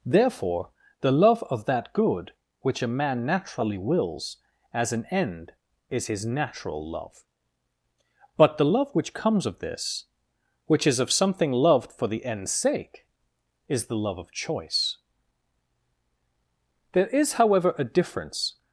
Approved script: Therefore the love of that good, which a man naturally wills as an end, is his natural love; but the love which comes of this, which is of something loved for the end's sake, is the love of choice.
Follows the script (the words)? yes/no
no